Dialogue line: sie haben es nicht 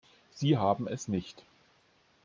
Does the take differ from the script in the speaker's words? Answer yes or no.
no